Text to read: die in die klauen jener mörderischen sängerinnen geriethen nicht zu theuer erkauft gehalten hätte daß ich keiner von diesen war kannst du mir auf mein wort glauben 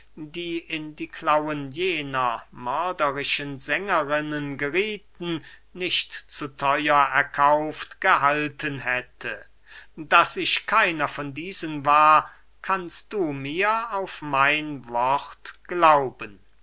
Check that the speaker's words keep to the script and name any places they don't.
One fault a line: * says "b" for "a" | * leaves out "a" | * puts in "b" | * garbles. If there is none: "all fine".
all fine